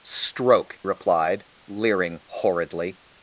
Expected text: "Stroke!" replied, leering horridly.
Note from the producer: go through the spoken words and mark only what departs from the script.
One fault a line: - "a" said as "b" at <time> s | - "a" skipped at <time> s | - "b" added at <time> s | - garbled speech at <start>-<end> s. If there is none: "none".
none